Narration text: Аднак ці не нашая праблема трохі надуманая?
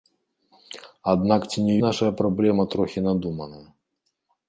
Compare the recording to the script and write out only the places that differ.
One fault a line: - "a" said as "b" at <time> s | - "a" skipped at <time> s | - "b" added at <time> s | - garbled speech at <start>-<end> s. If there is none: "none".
none